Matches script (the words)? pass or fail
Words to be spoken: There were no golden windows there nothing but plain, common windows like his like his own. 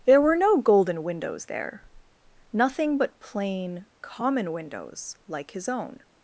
fail